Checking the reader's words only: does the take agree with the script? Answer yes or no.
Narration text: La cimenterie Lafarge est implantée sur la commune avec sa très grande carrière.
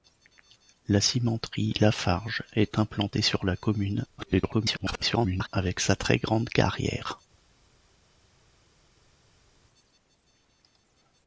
no